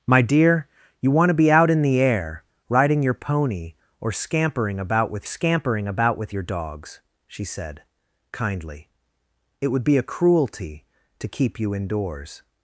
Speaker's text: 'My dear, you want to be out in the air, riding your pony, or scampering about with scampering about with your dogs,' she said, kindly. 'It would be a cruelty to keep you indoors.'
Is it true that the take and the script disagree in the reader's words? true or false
false